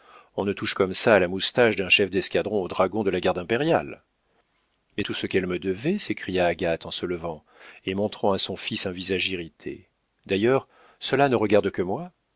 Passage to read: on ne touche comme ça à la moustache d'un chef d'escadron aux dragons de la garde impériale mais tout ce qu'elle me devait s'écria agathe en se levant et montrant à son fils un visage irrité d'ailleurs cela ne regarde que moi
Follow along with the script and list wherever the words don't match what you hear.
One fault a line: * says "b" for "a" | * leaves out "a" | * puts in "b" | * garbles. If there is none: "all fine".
all fine